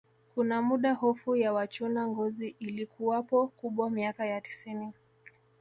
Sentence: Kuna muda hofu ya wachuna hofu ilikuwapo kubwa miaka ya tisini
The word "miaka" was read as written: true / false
true